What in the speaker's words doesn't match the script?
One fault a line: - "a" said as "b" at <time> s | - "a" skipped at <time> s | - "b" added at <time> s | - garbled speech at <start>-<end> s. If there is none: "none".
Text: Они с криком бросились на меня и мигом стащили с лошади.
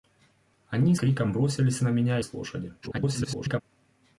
- "с" skipped at 0.9 s
- "мигом стащили" skipped at 2.2 s
- garbled speech at 2.8-3.6 s